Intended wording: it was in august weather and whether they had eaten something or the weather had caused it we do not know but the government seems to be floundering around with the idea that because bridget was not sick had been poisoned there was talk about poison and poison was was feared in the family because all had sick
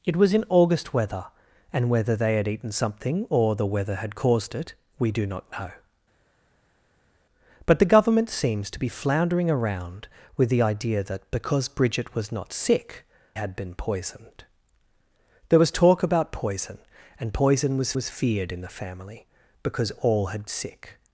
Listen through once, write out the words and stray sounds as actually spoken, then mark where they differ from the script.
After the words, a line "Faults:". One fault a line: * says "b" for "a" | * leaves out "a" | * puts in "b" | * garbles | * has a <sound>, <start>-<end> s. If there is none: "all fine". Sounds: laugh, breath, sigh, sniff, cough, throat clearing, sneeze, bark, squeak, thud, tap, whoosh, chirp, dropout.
it was in august weather and whether they had eaten something or the weather had caused it we do not know but the government seems to be floundering around with the idea that because bridget was not sick had been poisoned there was talk about poison and poison was was feared in the family because all had sick
Faults:
all fine